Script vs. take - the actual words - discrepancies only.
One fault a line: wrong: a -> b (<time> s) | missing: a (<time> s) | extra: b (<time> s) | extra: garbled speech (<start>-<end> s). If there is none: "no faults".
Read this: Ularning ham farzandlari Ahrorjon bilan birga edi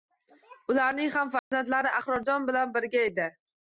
no faults